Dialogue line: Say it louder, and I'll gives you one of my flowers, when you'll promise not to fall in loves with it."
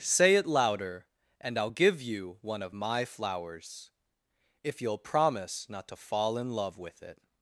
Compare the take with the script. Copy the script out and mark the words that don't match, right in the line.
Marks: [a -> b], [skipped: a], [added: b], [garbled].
Say it louder, and I'll [gives -> give] you one of my flowers, [when -> if] you'll promise not to fall in [loves -> love] with it."